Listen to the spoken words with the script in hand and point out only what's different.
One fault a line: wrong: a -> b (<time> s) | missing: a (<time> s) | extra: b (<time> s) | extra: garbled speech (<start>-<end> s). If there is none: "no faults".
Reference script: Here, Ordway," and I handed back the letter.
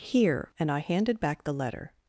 missing: Ordway (0.5 s)